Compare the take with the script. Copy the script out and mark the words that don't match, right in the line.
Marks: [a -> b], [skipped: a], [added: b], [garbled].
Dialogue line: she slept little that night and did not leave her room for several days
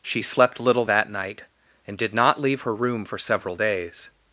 she slept little that night and did not leave her room for several days